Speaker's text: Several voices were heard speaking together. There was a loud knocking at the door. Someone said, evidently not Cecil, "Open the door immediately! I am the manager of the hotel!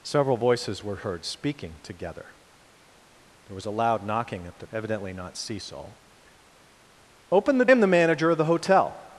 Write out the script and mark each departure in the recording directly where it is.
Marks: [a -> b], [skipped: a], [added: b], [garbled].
Several voices were heard speaking together. There was a loud knocking at the [skipped: door. Someone said,] evidently not Cecil, "Open the [skipped: door immediately! I] am the manager of the hotel!